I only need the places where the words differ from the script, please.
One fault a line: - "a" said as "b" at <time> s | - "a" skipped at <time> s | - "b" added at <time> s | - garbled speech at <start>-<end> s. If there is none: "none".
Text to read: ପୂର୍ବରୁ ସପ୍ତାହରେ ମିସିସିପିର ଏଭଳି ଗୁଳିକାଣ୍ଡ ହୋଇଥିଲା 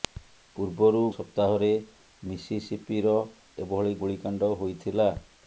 none